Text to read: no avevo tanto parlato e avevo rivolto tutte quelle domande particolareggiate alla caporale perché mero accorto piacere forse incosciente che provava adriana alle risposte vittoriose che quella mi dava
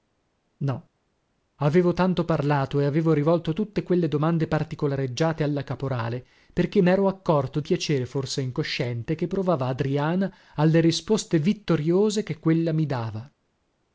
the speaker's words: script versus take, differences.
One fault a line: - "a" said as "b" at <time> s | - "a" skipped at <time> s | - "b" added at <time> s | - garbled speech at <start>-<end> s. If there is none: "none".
none